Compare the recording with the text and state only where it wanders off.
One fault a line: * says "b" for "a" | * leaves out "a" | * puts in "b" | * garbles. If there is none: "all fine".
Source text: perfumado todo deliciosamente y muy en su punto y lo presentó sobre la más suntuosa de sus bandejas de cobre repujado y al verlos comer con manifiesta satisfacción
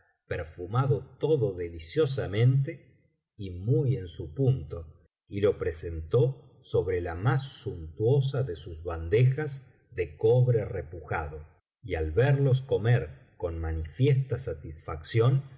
all fine